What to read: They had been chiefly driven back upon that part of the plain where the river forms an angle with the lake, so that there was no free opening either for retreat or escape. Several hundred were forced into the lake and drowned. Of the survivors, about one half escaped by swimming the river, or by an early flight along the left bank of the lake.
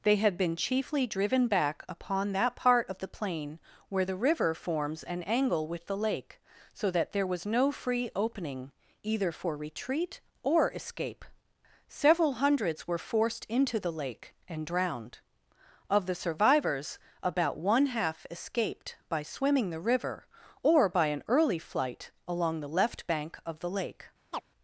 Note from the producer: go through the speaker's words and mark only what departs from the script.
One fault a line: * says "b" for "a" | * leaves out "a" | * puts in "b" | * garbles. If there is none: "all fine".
* says "hundreds" for "hundred"